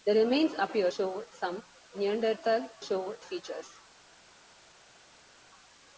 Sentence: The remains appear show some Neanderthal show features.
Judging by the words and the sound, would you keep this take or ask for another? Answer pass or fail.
pass